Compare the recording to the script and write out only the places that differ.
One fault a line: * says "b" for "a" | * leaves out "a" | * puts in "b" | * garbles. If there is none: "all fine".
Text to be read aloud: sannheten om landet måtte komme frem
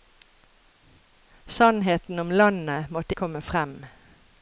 all fine